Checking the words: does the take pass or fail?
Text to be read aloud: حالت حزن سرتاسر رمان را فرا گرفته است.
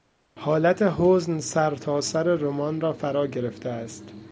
pass